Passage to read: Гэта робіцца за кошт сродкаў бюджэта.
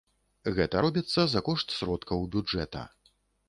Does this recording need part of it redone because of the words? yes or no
no